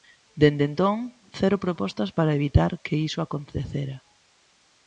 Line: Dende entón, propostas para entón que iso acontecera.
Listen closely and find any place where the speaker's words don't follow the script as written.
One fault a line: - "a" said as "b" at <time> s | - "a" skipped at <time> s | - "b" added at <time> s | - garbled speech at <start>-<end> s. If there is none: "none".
- "cero" added at 1.4 s
- "entón" said as "evitar" at 2.4 s